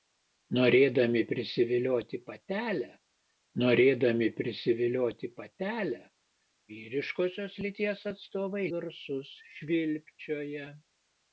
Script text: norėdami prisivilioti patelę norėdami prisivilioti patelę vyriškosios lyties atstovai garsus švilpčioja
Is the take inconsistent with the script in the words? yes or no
no